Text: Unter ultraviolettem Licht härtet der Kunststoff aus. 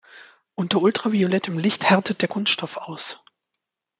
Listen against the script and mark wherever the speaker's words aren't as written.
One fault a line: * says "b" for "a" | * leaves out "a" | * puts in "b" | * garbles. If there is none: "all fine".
all fine